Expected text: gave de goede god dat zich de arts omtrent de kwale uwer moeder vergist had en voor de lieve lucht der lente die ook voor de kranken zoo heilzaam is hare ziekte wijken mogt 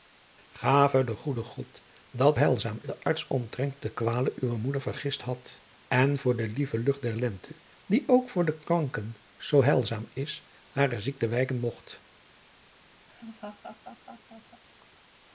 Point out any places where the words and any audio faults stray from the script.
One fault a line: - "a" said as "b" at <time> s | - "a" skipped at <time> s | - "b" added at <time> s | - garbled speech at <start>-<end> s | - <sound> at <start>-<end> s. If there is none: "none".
- "zich" said as "heilzaam" at 2.4 s
- laugh at 13.1-14.6 s